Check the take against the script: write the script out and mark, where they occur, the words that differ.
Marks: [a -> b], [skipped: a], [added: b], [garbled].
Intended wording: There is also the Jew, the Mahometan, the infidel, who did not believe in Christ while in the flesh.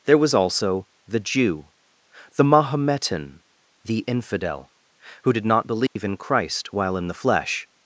There [is -> was] also the Jew, the Mahometan, the infidel, who did not believe in Christ while in the flesh.